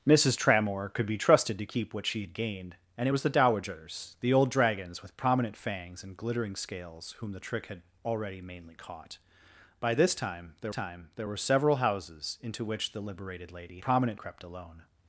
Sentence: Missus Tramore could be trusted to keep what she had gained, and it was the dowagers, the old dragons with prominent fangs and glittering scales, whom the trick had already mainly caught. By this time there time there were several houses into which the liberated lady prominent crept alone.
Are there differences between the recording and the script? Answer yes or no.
no